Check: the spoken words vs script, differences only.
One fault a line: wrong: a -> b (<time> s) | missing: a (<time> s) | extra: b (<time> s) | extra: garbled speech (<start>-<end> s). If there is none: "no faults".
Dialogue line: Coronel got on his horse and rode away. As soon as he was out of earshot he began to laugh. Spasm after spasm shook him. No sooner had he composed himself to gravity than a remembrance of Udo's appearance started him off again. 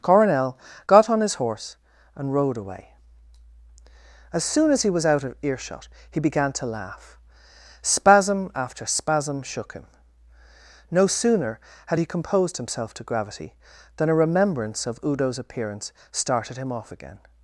no faults